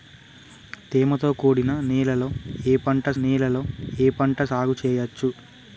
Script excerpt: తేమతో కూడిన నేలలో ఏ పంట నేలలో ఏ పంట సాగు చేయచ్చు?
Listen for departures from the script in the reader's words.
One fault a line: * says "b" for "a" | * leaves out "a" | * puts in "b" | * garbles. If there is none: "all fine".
all fine